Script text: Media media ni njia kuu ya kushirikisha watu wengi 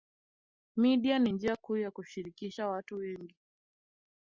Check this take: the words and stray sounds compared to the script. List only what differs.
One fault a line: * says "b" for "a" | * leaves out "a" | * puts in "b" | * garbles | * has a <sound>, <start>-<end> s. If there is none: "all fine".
* leaves out "media"